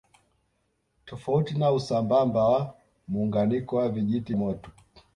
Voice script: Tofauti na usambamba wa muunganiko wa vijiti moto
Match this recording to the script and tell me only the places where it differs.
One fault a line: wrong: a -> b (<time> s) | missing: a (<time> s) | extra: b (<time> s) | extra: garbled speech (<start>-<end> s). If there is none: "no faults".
no faults